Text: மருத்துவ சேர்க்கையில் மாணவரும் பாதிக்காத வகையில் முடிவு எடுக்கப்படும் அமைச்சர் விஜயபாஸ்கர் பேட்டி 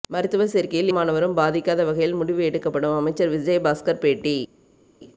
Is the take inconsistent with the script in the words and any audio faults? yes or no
no